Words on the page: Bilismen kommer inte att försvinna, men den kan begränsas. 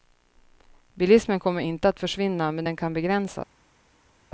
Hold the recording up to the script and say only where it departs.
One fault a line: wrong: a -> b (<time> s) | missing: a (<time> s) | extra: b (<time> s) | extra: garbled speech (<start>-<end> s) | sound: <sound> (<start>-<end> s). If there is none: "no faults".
no faults